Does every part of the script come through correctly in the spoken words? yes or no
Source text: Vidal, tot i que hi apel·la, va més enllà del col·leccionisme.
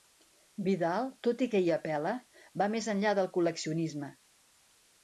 yes